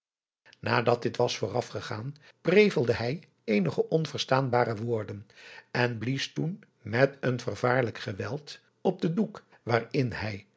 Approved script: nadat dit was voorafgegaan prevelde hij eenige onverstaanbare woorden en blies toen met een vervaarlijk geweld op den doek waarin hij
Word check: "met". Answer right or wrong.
right